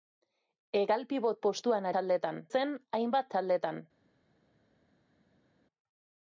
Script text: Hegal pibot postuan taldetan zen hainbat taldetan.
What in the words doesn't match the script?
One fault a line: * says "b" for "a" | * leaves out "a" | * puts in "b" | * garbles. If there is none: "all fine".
all fine